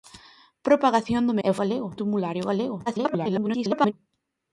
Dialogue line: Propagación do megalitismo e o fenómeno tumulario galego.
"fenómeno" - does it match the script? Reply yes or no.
no